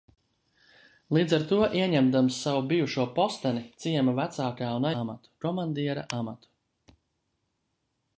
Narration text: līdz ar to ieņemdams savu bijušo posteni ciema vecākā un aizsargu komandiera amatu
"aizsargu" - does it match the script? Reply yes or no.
no